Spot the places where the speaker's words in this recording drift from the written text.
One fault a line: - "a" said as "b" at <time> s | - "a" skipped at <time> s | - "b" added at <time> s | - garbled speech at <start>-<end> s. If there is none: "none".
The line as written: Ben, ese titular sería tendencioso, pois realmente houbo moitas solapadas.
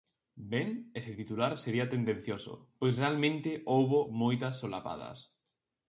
none